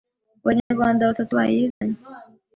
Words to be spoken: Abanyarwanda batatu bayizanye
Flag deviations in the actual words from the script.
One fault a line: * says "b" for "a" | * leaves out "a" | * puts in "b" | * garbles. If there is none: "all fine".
all fine